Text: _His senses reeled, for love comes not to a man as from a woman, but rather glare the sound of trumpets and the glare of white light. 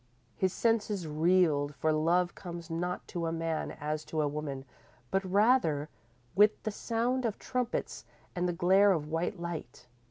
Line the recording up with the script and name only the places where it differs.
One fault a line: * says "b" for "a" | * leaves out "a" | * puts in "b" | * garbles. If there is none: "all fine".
* says "to" for "from"
* says "with" for "glare"